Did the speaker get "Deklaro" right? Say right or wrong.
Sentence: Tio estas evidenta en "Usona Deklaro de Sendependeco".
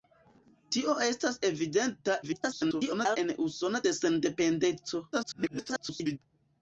wrong